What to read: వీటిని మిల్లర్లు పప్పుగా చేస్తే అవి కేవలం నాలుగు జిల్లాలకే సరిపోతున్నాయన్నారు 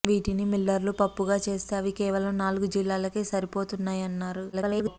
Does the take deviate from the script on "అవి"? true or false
false